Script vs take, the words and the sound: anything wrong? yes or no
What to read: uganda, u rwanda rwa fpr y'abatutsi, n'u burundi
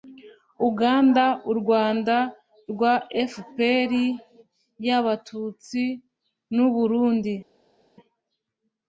no